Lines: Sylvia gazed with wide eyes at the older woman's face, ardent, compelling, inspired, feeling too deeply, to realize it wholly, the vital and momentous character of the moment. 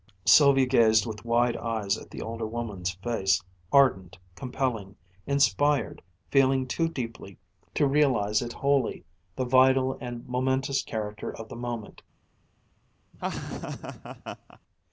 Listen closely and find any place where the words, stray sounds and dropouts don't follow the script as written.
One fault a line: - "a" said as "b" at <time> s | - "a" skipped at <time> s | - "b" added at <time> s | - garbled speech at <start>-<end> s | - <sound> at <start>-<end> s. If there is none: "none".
- laugh at 13.1-14.6 s